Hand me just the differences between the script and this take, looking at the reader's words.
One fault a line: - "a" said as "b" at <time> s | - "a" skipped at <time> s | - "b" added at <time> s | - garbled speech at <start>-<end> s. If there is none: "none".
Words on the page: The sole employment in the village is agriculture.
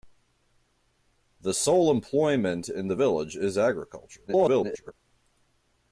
- garbled speech at 4.3-4.9 s